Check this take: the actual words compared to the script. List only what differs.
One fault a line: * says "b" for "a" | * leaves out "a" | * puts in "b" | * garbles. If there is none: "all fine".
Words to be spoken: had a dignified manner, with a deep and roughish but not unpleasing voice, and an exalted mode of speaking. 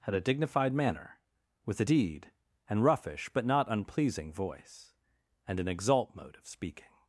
* says "deed" for "deep"
* says "exalt" for "exalted"